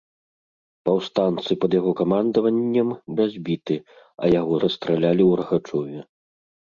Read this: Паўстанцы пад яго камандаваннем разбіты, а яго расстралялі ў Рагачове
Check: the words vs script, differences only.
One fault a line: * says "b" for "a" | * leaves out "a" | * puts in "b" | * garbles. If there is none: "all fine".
all fine